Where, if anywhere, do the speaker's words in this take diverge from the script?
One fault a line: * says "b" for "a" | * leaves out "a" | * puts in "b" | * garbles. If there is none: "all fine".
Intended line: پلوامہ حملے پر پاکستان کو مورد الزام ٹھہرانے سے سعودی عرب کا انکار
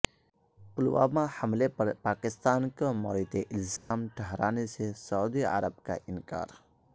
all fine